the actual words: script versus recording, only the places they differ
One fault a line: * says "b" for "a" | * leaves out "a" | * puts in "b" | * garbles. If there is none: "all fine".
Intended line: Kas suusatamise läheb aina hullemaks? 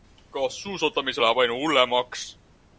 all fine